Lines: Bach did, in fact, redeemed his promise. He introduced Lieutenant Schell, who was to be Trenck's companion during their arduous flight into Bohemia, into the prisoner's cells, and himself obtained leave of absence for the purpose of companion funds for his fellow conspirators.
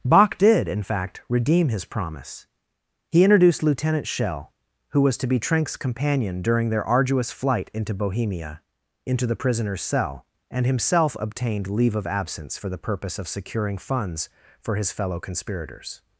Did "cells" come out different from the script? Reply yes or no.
yes